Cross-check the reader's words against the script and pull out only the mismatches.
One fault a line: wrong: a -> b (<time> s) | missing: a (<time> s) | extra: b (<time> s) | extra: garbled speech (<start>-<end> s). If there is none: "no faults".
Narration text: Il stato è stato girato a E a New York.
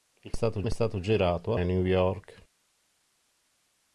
no faults